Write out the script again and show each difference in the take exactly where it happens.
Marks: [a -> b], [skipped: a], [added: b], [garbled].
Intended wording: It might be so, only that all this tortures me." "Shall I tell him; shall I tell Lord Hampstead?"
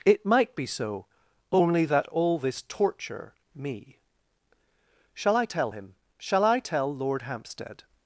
It might be so, only that all this [tortures -> torture] me." "Shall I tell him; shall I tell Lord Hampstead?"